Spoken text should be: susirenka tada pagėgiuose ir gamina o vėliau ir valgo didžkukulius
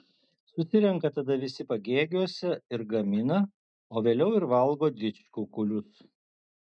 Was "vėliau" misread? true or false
false